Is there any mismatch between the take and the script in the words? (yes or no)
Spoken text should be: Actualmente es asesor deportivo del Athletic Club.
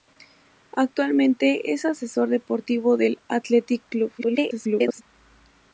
yes